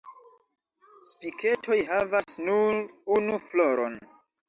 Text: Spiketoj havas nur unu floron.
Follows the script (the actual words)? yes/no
yes